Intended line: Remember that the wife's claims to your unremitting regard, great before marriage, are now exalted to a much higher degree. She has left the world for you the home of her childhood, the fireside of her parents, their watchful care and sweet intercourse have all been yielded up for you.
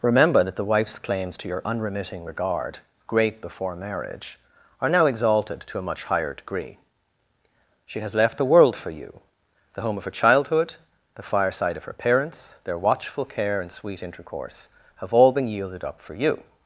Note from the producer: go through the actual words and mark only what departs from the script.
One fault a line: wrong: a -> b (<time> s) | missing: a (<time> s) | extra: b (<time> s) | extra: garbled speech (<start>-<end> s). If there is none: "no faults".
no faults